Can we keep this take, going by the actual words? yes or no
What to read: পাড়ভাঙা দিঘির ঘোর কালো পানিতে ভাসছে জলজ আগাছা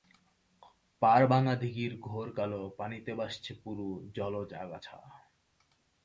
no